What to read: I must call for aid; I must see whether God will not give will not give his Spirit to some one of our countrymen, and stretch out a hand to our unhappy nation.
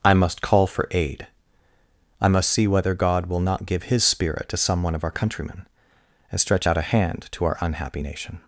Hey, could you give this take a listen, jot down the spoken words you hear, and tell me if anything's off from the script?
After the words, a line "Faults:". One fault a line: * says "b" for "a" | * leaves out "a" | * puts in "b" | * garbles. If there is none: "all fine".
I must call for aid; I must see whether God will not give his Spirit to some one of our countrymen, and stretch out a hand to our unhappy nation.
Faults:
* leaves out "will not give"